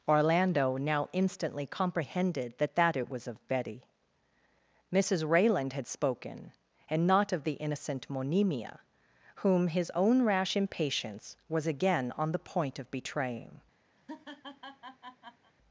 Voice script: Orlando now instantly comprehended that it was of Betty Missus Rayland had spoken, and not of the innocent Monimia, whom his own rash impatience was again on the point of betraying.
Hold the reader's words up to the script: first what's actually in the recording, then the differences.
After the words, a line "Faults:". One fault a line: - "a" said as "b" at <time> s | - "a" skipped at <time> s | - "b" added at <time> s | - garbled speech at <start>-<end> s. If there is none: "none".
Orlando now instantly comprehended that that it was of Betty Missus Rayland had spoken, and not of the innocent Monimia, whom his own rash impatience was again on the point of betraying.
Faults:
- "that" added at 2.8 s